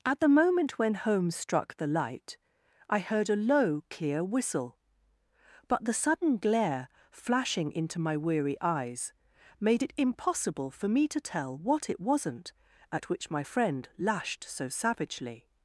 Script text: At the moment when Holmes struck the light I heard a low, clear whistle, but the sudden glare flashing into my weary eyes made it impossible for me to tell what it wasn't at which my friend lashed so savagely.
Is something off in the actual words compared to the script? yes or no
no